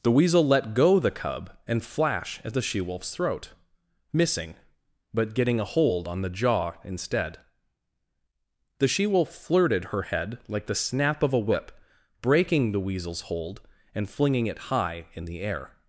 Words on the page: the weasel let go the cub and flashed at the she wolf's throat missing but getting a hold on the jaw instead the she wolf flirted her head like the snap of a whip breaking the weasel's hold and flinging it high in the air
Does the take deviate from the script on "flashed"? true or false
true